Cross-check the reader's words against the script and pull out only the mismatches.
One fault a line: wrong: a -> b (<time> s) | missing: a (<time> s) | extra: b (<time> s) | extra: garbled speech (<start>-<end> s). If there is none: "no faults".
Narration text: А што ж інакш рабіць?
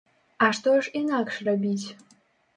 no faults